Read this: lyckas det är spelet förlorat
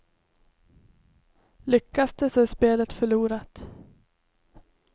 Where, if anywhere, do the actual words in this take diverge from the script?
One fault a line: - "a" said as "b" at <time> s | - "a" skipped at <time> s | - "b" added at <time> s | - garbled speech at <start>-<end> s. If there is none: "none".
- "så" added at 2.3 s